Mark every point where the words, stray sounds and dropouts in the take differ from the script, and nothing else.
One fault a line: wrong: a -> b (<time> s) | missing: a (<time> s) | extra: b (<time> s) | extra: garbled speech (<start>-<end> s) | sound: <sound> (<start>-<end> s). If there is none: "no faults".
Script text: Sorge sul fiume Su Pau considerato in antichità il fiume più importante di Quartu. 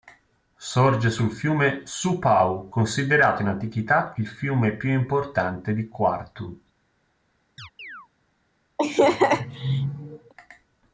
sound: chirp (7.6-8.1 s)
sound: laugh (8.8-10.3 s)